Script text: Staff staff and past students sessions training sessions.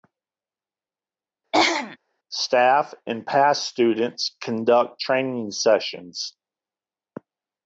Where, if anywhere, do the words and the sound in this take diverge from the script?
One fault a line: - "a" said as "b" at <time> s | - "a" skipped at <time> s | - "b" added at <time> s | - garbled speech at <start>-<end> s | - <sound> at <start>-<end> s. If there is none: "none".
- throat clearing at 1.5-2.0 s
- "staff" skipped at 2.9 s
- "sessions" said as "conduct" at 4.4 s